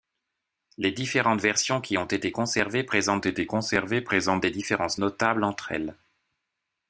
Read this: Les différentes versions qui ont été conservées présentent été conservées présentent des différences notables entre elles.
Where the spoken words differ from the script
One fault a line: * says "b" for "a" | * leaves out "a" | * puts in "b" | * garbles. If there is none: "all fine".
all fine